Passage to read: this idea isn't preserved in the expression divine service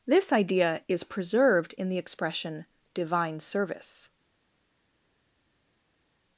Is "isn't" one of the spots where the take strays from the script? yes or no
yes